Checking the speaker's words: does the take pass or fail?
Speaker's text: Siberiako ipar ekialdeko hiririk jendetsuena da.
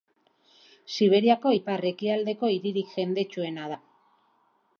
pass